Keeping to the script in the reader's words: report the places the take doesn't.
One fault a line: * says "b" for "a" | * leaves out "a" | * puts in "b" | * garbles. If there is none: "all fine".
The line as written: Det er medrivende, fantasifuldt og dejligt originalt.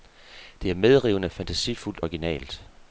* leaves out "og dejligt"